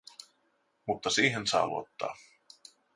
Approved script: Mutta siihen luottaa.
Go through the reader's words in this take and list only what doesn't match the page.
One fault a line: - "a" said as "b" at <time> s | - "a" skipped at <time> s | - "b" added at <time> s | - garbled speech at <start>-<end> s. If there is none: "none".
- "saa" added at 1.5 s